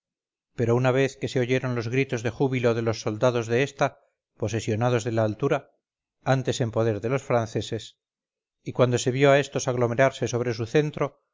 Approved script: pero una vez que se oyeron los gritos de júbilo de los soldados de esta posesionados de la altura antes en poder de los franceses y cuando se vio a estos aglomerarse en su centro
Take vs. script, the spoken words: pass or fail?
fail